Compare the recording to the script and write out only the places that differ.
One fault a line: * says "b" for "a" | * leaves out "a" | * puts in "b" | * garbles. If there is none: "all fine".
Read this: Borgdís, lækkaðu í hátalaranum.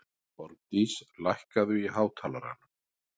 all fine